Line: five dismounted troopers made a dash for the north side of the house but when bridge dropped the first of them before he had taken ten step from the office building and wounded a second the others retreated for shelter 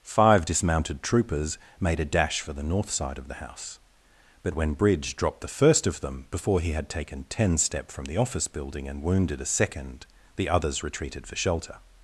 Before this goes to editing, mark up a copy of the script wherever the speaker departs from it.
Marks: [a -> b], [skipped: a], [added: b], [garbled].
five dismounted troopers made a dash for the north side of the house but when bridge dropped the first of them before he had taken ten step from the office building and wounded a second the others retreated for shelter